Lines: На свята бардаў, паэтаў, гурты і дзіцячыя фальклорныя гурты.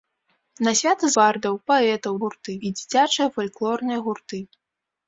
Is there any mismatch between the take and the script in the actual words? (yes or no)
no